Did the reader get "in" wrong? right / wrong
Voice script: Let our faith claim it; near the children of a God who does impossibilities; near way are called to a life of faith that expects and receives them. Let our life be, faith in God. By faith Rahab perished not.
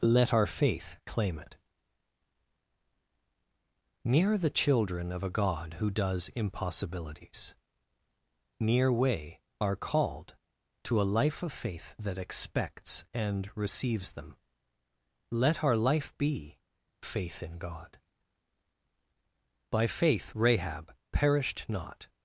right